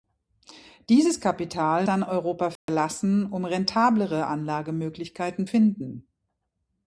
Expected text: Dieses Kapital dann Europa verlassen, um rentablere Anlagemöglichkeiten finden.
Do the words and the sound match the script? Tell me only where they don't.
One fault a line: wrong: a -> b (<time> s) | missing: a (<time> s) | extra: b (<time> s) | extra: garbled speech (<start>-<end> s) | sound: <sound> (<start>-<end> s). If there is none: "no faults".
sound: dropout (2.6-2.7 s)